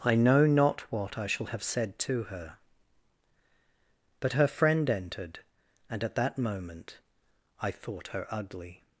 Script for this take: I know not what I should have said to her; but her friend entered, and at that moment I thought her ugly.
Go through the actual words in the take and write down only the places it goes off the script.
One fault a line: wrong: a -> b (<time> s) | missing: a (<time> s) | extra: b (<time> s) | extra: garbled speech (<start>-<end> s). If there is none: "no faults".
wrong: should -> shall (1.3 s)